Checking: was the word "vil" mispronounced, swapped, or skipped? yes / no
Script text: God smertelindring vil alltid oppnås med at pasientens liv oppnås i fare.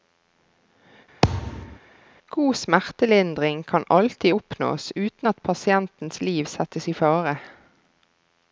yes